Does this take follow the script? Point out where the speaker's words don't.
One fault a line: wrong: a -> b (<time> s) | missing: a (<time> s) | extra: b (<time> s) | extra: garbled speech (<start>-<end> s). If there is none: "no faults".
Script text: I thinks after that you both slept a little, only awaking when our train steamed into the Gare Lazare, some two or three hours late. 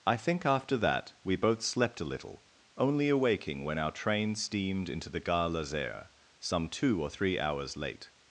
wrong: thinks -> think (0.2 s)
wrong: you -> we (1.2 s)